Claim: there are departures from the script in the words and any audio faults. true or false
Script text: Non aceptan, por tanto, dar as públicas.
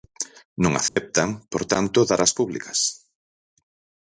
true